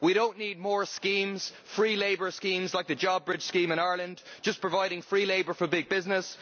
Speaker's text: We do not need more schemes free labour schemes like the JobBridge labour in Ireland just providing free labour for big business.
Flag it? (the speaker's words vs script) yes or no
yes